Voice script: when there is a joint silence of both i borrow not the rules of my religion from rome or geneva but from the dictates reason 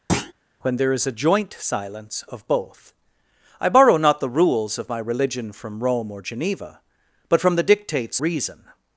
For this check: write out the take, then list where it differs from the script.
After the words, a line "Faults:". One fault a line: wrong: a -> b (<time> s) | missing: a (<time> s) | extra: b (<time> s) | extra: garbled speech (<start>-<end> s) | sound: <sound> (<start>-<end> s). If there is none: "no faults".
when there is a joint silence of both i borrow not the rules of my religion from rome or geneva but from the dictates reason
Faults:
sound: thud (0.1-0.3 s)